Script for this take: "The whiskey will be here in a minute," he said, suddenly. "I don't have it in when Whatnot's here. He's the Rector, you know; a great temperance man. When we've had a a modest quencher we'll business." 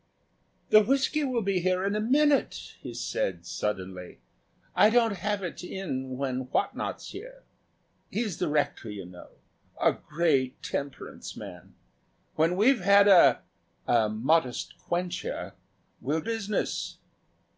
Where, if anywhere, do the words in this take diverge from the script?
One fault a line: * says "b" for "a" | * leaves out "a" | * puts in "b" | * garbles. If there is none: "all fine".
all fine